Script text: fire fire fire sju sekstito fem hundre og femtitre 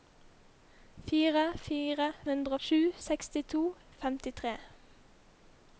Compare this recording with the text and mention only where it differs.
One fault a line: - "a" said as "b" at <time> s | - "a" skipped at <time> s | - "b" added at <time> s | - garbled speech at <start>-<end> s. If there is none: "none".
- "fire" said as "hundre" at 2.3 s
- "fem hundre" skipped at 3.6 s